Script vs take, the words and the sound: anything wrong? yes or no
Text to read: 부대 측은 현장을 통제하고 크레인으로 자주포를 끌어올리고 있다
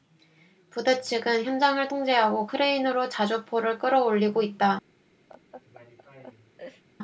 yes